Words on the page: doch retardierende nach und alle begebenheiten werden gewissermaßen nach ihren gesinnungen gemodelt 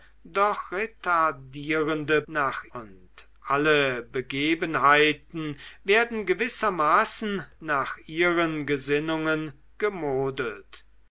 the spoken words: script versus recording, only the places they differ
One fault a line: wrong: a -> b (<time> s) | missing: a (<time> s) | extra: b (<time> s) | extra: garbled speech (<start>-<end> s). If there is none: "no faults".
no faults